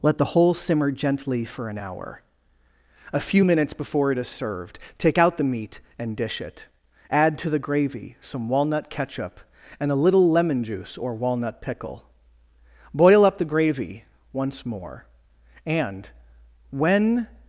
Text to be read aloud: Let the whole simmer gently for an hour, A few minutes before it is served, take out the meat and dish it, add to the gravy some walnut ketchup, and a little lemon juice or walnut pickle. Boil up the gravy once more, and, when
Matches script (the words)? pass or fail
pass